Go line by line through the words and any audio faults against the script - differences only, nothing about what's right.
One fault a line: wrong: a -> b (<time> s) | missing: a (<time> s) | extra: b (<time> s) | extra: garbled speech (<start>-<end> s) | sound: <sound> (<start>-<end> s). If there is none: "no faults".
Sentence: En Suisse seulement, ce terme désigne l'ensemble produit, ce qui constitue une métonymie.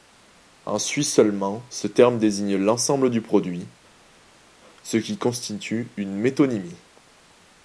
extra: du (3.1 s)